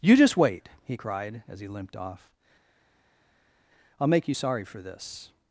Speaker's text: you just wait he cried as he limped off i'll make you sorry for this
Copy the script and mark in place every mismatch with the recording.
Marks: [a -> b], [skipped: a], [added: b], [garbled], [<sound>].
you just wait he cried as he limped off i'll make you sorry for this